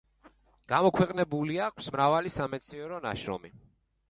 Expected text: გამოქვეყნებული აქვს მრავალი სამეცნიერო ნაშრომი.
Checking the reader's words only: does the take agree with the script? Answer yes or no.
yes